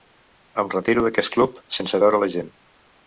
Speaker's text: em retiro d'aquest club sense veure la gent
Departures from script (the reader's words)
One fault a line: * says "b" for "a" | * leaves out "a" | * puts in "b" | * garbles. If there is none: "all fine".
all fine